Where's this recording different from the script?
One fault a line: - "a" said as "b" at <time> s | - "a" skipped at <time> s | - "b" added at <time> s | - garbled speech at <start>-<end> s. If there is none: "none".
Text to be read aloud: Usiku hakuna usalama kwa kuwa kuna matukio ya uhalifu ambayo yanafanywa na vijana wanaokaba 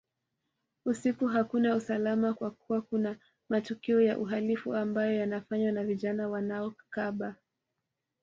none